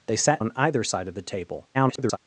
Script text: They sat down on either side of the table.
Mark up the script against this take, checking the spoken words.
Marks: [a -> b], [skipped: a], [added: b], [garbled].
They sat [skipped: down] on either side of the table. [garbled]